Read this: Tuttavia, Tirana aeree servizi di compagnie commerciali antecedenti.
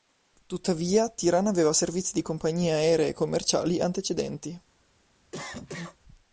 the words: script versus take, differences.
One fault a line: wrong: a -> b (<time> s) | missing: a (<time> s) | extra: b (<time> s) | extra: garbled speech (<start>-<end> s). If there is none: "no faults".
wrong: aeree -> aveva (1.5 s)
extra: aeree (2.7 s)